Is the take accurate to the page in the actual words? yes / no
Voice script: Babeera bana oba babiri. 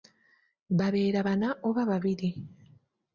yes